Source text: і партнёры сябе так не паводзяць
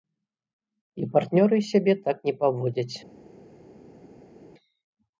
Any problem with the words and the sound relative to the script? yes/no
no